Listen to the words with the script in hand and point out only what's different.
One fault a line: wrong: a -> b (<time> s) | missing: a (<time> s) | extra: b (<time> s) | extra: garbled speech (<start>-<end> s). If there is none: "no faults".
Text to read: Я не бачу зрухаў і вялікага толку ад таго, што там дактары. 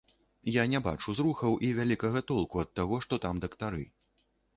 no faults